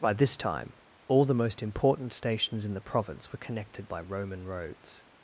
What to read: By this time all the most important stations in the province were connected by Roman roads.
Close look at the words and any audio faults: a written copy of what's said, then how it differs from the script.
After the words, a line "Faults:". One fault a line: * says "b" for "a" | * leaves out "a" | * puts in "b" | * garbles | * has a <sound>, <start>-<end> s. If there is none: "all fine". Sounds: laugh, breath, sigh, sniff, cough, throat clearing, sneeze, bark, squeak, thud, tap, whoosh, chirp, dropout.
By this time all the most important stations in the province were connected by Roman roads.
Faults:
all fine